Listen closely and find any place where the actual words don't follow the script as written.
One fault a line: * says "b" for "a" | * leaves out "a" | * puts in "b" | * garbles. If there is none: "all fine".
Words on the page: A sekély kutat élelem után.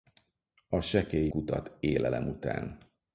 all fine